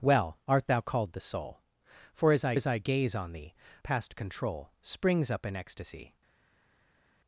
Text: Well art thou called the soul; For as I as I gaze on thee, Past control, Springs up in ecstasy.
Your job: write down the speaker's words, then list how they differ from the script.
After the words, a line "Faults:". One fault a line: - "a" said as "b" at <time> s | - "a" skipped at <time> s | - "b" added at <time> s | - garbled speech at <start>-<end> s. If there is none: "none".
Well art thou called the soul; For as I as I gaze on thee, Past control, Springs up in ecstasy.
Faults:
none